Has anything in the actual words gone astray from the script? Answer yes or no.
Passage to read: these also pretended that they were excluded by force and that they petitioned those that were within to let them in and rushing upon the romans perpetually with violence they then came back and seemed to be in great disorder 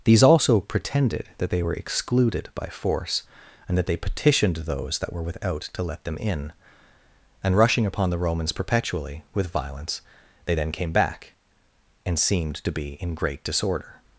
yes